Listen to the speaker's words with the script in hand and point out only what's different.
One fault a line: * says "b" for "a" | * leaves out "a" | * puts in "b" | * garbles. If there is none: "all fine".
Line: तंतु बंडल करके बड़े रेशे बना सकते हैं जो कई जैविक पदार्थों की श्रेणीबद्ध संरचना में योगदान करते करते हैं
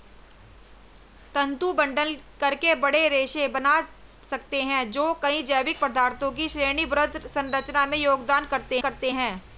all fine